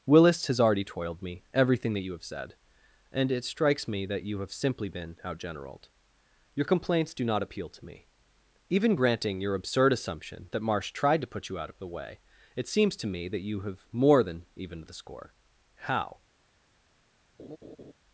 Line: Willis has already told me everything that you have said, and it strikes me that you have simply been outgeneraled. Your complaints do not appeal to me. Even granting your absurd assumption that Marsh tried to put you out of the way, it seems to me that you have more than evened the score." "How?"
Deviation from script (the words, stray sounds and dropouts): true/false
true